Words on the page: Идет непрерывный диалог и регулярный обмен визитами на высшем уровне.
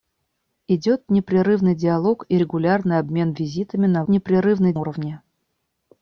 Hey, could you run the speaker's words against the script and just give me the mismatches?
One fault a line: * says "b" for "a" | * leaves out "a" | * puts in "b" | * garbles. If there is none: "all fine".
* says "непрерывный" for "высшем"